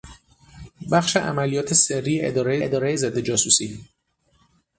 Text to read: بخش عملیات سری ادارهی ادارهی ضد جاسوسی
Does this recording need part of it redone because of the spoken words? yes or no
no